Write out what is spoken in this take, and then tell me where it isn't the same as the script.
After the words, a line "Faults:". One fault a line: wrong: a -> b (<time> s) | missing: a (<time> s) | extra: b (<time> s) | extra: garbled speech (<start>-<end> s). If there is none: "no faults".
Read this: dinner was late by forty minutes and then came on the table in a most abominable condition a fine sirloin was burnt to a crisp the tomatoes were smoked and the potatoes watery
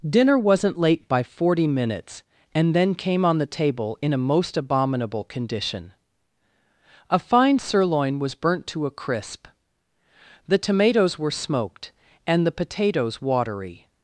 dinner wasn't late by forty minutes and then came on the table in a most abominable condition a fine sirloin was burnt to a crisp the tomatoes were smoked and the potatoes watery
Faults:
wrong: was -> wasn't (0.4 s)